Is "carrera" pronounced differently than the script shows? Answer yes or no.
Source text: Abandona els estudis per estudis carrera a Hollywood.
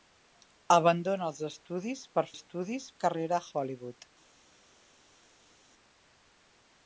no